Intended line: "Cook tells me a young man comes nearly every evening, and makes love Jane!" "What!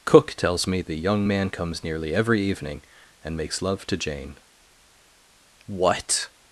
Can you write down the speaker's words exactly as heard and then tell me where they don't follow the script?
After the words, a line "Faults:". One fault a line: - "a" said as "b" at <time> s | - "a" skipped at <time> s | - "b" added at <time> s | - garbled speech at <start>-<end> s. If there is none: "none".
"Cook tells me the young man comes nearly every evening, and makes love to Jane!" "What!
Faults:
- "a" said as "the" at 0.8 s
- "to" added at 3.9 s